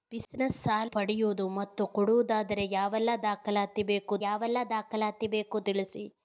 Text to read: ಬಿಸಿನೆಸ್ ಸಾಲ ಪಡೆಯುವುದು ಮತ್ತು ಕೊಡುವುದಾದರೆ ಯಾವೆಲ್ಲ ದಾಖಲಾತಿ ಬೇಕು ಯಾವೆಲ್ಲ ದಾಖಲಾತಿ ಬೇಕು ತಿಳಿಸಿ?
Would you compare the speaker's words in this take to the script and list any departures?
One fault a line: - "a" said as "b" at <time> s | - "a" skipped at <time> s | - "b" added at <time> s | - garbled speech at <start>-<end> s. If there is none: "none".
none